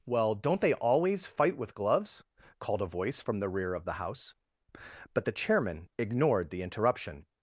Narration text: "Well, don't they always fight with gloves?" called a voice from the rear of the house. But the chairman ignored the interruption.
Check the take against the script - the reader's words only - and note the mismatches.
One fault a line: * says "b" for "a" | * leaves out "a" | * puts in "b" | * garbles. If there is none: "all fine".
all fine